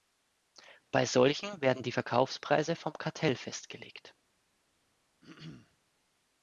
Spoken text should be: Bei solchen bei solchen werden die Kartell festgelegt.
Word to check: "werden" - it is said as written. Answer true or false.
false